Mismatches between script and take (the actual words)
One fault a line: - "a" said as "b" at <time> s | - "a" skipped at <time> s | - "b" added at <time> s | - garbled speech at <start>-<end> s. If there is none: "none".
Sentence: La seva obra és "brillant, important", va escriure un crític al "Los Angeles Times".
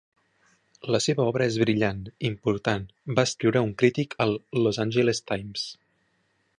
none